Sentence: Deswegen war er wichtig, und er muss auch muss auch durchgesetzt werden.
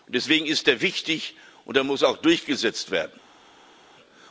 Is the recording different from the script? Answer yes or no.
yes